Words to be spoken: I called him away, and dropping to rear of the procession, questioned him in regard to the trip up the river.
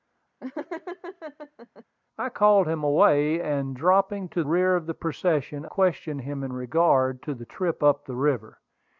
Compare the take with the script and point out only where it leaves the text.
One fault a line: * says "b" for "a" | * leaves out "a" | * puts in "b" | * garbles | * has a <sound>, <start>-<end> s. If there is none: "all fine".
* has a laugh, 0.4-1.8 s